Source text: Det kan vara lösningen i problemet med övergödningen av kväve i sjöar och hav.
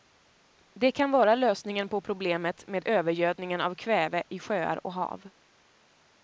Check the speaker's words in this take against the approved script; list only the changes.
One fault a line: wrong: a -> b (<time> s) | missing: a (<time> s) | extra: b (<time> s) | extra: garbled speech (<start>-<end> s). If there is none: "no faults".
wrong: i -> på (1.9 s)